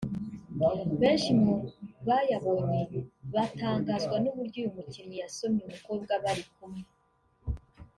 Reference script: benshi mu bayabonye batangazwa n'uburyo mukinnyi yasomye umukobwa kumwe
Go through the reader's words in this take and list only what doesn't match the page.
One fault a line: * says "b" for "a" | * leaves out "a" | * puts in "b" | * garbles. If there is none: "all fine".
* puts in "uyu"
* puts in "bari"